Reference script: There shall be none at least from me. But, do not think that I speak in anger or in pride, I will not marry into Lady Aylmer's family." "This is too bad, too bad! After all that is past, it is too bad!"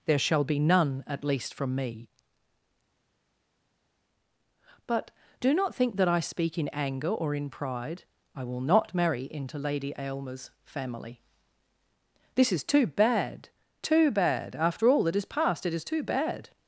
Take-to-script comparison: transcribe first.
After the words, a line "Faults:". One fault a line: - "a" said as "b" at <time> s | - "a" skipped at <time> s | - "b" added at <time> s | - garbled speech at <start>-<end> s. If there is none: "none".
There shall be none at least from me. But, do not think that I speak in anger or in pride, I will not marry into Lady Aylmer's family." "This is too bad, too bad! After all that is past, it is too bad!"
Faults:
none